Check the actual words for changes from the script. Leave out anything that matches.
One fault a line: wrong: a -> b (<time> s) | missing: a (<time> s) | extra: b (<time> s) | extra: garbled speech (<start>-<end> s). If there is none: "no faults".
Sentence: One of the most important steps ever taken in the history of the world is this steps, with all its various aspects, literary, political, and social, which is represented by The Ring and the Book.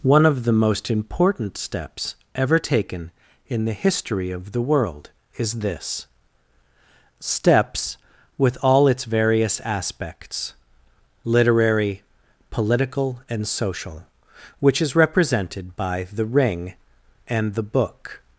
no faults